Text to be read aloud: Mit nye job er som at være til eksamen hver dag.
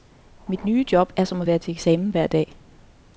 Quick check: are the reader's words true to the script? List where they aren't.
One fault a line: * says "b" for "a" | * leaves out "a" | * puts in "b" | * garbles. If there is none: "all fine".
all fine